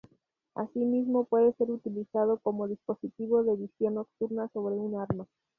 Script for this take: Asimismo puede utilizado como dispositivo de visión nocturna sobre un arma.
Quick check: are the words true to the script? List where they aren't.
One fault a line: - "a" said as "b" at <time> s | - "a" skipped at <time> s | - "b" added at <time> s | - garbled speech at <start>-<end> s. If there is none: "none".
- "ser" added at 1.6 s